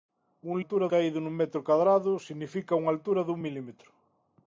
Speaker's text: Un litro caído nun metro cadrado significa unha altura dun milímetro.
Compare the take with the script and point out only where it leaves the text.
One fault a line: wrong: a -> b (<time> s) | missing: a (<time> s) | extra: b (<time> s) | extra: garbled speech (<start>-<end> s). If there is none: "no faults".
wrong: litro -> altura (0.6 s)